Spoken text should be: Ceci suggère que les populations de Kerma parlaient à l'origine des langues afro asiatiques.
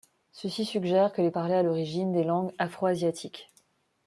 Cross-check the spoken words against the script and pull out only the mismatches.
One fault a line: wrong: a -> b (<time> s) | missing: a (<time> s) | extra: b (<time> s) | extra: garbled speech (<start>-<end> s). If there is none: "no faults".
missing: populations de Kerma (1.3 s)